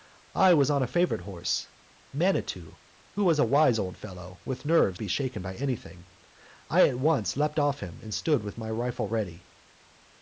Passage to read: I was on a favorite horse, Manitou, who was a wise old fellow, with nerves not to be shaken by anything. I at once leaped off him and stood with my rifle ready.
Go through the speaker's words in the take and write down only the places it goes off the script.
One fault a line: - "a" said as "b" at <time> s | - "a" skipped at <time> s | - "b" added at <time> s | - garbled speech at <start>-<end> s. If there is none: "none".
- "not" skipped at 5.0 s